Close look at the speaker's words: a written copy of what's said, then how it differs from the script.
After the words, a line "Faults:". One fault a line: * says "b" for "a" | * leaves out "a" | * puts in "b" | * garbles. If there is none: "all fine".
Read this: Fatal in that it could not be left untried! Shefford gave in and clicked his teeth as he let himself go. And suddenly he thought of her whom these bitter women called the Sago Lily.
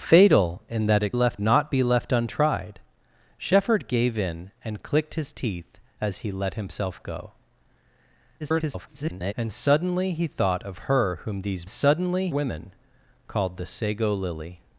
Fatal in that it left not be left untried! Shefford gave in and clicked his teeth as he let himself go. [garbled] And suddenly he thought of her whom these suddenly women called the Sago Lily.
Faults:
* says "left" for "could"
* garbles
* says "suddenly" for "bitter"